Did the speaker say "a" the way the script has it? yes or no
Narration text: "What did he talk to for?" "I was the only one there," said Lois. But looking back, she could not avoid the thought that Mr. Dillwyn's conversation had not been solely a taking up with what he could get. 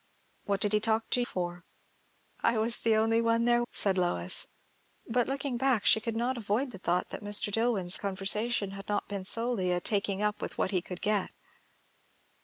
yes